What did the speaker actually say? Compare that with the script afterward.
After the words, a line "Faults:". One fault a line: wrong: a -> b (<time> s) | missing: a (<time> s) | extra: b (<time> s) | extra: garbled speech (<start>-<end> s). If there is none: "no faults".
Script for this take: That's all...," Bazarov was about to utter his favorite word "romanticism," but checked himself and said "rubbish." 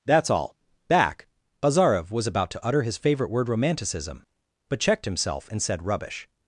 That's all...," back Bazarov was about to utter his favorite word "romanticism," but checked himself and said "rubbish."
Faults:
extra: back (0.9 s)